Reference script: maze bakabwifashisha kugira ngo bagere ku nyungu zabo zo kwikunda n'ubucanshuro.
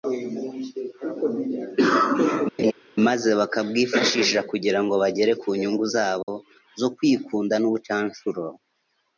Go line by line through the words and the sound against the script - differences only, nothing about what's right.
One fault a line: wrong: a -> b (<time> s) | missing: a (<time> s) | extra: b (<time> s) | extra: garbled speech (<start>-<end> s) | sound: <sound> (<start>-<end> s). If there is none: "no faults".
sound: laugh (2.6-2.7 s)
sound: dropout (6.2-6.3 s)